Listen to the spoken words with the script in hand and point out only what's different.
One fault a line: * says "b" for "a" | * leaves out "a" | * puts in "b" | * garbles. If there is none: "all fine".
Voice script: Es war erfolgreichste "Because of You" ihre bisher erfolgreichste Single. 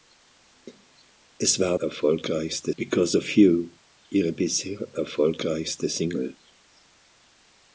all fine